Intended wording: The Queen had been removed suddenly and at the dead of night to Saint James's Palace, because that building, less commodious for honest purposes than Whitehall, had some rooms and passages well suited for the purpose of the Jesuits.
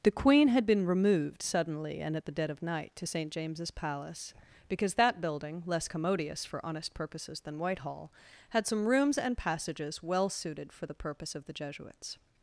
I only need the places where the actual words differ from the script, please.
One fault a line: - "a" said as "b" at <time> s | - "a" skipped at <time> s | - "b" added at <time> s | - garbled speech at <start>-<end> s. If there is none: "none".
none